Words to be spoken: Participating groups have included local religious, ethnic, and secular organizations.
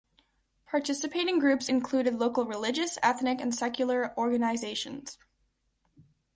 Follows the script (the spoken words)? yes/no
no